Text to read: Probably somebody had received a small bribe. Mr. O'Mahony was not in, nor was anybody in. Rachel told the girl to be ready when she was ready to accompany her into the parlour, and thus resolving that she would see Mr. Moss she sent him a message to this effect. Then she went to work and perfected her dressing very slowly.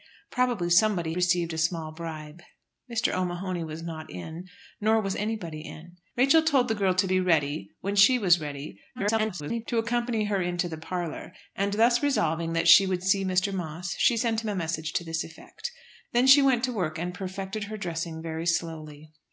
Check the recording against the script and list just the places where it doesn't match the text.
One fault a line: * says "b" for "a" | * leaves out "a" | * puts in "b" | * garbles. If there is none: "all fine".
* leaves out "had"
* garbles